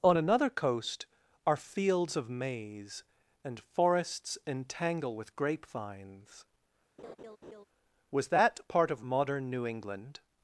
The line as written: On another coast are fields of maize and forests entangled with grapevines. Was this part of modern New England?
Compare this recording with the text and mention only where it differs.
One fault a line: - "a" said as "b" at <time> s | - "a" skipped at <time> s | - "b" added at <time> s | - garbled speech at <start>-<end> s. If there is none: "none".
- "entangled" said as "entangle" at 4.5 s
- "this" said as "that" at 8.3 s